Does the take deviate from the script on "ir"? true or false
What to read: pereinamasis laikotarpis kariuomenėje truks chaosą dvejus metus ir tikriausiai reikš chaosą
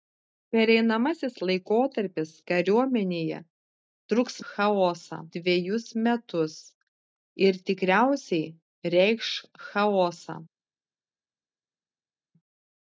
false